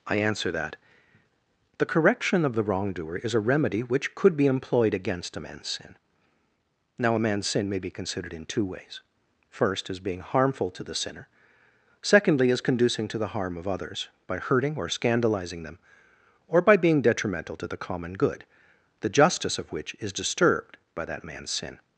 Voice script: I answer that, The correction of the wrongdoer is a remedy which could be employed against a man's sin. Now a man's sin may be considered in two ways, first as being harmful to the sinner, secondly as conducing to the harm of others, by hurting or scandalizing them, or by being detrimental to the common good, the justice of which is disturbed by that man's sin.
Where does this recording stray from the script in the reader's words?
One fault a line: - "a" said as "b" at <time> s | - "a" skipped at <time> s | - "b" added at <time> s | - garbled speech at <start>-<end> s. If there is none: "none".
none